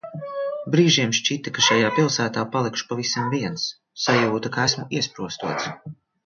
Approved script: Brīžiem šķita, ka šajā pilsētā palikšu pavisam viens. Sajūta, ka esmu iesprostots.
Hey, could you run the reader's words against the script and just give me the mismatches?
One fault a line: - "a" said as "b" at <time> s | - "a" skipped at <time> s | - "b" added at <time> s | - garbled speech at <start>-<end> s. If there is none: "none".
none